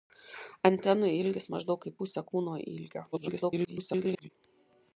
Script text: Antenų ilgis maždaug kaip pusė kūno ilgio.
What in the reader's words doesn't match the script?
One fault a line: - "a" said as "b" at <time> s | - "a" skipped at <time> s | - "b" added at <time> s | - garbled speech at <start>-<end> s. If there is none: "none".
- garbled speech at 3.1-4.3 s